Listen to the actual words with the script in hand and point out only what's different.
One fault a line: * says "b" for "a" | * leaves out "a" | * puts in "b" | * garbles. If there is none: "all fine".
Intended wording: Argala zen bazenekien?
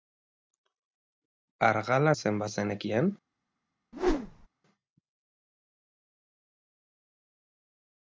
all fine